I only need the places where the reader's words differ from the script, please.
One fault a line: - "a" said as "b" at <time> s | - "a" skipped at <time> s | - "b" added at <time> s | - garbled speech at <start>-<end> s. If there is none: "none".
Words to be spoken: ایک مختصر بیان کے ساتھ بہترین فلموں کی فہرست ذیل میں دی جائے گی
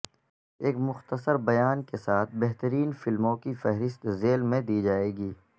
none